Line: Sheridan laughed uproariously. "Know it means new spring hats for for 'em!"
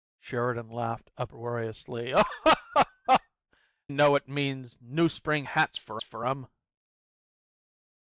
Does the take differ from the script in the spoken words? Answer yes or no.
no